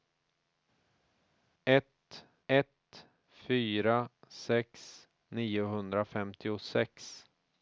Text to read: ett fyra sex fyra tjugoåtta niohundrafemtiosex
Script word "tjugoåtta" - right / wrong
wrong